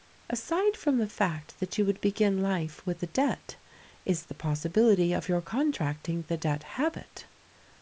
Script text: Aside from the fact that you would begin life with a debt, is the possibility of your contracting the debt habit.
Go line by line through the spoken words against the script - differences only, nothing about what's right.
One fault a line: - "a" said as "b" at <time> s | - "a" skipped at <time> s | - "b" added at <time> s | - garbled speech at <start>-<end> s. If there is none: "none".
none